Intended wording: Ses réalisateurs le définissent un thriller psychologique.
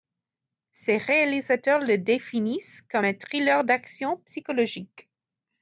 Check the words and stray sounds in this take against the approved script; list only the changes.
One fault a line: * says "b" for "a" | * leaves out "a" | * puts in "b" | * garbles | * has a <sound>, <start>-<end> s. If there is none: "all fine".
* puts in "comme"
* puts in "d'action"